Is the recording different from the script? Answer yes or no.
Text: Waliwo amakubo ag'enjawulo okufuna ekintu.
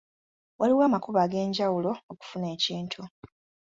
no